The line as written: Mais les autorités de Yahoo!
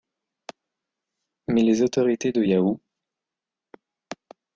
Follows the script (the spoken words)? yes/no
yes